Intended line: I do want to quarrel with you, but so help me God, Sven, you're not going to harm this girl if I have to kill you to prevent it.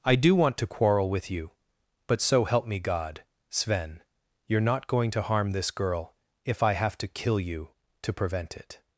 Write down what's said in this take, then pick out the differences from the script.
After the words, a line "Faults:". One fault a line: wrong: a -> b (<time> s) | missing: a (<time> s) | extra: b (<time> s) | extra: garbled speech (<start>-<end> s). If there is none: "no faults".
I do want to quarrel with you, but so help me God, Sven, you're not going to harm this girl if I have to kill you to prevent it.
Faults:
no faults